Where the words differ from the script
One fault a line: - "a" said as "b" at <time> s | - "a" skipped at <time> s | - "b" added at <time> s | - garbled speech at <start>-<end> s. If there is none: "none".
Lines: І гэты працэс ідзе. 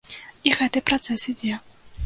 none